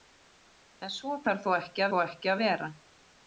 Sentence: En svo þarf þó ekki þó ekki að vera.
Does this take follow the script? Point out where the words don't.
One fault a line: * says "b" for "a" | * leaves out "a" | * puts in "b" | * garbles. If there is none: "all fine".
all fine